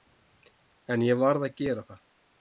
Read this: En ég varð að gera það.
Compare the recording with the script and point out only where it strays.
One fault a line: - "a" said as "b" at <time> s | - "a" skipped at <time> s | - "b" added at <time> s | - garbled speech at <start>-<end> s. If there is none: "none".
none